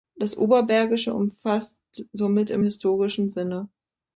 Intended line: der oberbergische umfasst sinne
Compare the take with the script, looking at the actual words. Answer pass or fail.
fail